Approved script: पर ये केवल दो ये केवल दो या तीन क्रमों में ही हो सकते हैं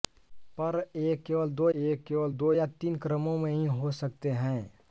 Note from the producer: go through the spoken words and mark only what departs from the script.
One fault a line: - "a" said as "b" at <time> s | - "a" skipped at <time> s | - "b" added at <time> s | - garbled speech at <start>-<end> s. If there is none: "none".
none